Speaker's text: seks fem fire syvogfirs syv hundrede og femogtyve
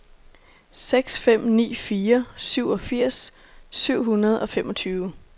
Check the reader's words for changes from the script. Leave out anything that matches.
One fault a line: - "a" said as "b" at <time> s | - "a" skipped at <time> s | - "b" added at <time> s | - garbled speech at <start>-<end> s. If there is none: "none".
- "ni" added at 1.4 s